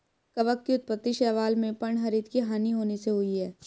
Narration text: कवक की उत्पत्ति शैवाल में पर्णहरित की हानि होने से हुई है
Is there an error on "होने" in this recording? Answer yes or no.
no